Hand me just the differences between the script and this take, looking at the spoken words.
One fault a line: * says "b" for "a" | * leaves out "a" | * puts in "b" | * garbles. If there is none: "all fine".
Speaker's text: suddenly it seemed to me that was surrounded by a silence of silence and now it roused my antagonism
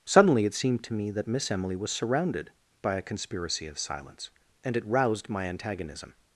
* puts in "miss emily"
* says "conspiracy" for "silence"
* leaves out "now"